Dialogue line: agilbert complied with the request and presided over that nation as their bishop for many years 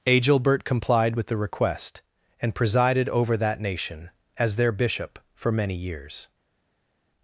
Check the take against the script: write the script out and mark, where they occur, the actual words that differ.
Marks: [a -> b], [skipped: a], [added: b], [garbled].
agilbert complied with the request and presided over that nation as their bishop for many years